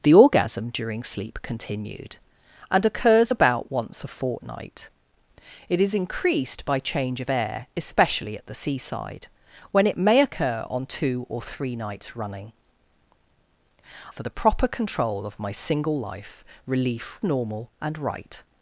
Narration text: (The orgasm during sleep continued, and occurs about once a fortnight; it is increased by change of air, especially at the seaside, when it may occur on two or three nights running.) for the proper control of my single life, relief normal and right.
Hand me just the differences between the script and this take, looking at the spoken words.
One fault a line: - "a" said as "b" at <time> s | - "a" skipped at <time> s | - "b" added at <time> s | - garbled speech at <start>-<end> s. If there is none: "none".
none